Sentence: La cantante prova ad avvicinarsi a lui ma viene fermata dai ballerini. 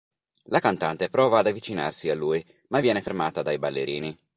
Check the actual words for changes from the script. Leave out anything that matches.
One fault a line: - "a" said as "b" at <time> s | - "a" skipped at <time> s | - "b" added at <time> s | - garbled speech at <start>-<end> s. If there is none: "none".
none